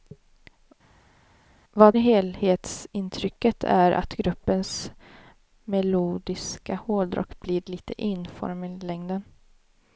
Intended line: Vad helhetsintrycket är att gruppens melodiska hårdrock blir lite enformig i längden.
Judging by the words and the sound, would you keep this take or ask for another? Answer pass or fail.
pass